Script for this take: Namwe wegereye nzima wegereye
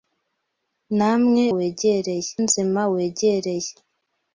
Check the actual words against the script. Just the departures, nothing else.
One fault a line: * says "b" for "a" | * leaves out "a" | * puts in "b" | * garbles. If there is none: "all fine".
all fine